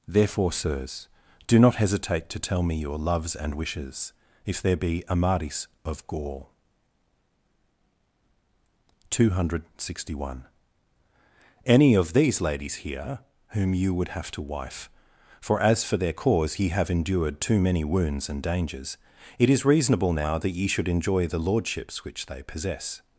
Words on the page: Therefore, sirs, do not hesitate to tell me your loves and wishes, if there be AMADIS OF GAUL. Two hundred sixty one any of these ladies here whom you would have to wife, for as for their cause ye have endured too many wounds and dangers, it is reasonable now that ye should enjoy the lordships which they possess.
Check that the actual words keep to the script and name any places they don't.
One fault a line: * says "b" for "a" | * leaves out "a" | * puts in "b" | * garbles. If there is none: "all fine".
all fine